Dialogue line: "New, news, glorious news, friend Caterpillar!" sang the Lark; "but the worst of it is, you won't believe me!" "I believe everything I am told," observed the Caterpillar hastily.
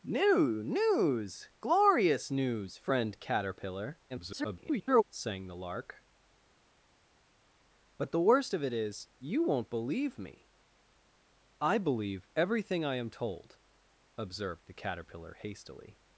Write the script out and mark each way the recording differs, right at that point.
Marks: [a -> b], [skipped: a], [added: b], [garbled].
"New, news, glorious news, friend Caterpillar!" [garbled] sang the Lark; "but the worst of it is, you won't believe me!" "I believe everything I am told," observed the Caterpillar hastily.